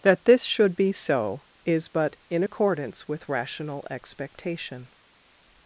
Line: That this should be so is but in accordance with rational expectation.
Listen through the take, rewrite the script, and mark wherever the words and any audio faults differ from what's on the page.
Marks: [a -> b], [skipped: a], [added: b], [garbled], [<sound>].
That this should be so is but in accordance with rational expectation.